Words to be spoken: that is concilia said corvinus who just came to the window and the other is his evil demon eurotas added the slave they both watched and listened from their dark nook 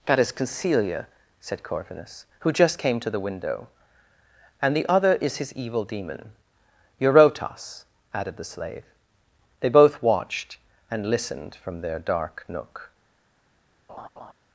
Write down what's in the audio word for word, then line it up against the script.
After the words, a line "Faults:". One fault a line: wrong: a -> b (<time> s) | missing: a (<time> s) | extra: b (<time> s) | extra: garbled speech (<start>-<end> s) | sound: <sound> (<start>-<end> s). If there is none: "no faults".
that is concilia said corvinus who just came to the window and the other is his evil demon eurotas added the slave they both watched and listened from their dark nook
Faults:
sound: laugh (13.9-14.3 s)